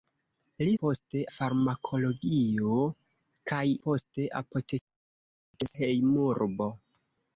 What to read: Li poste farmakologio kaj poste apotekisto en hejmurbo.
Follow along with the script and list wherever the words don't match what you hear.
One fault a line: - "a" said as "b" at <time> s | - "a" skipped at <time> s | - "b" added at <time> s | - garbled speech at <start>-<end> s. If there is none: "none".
none